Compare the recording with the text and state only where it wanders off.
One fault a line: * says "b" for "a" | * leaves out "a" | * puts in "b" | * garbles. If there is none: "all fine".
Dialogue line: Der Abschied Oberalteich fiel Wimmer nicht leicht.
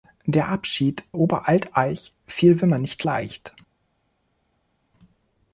all fine